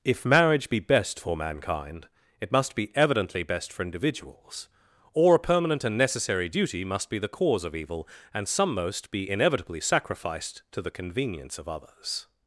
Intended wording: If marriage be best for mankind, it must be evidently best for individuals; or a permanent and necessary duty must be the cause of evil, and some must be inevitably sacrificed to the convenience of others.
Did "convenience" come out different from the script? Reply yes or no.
no